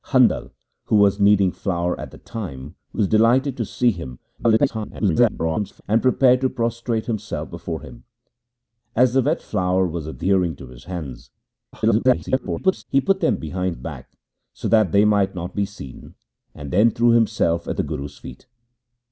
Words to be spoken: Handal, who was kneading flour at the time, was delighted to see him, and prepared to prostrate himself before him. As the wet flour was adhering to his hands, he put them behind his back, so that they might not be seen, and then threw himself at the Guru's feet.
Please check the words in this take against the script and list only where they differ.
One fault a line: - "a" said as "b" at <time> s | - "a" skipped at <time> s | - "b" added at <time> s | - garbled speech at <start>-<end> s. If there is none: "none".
- garbled speech at 4.4-5.8 s
- garbled speech at 11.7-12.8 s
- "his" skipped at 13.8 s